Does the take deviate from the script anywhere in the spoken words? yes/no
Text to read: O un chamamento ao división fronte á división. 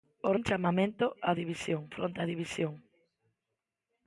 no